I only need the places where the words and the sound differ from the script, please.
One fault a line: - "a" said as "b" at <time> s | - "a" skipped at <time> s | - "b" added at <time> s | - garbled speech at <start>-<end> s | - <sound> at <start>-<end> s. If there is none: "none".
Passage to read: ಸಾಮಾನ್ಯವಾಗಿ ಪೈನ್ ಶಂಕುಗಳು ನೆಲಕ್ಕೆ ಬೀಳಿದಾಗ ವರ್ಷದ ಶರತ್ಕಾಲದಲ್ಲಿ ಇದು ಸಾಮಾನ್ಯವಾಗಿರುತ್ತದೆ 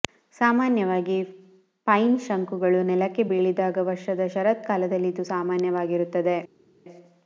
none